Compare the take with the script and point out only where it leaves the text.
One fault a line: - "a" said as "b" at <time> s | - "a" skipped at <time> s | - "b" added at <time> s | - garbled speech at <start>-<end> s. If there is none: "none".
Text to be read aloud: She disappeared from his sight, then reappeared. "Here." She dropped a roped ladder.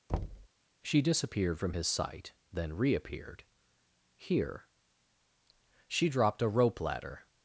- "roped" said as "rope" at 6.5 s